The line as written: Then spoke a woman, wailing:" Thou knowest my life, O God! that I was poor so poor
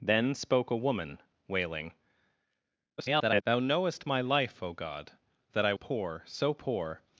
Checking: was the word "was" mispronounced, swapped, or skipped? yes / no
yes